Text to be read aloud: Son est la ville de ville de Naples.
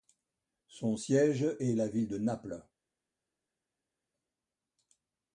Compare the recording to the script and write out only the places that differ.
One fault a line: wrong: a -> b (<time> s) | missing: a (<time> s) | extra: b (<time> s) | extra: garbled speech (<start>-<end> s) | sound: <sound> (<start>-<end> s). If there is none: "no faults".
extra: siège (1.0 s)
missing: ville de (2.2 s)